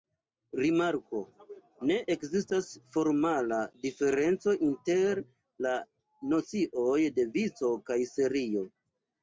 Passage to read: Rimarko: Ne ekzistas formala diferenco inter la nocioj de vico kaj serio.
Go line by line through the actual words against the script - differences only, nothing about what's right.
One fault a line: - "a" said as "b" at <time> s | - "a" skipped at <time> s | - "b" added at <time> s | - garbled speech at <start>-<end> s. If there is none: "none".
none